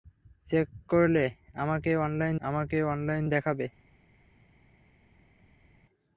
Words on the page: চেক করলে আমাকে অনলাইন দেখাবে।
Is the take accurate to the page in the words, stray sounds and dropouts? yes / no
no